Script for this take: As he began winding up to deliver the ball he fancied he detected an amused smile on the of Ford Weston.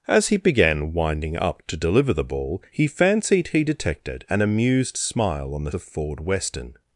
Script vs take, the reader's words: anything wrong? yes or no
no